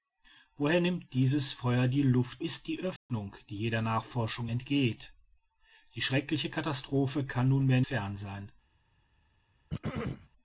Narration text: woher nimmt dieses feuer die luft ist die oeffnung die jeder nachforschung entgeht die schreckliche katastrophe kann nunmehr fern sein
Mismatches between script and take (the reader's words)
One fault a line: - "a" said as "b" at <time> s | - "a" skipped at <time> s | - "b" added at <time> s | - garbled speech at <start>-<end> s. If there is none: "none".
none